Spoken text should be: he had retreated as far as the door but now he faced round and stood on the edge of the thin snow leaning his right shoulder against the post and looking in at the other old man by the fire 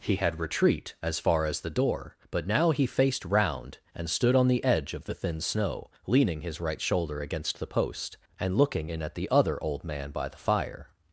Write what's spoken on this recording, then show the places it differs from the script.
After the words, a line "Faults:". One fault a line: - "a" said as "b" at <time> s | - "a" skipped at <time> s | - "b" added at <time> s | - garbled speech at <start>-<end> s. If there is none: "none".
he had retreat as far as the door but now he faced round and stood on the edge of the thin snow leaning his right shoulder against the post and looking in at the other old man by the fire
Faults:
- "retreated" said as "retreat" at 0.4 s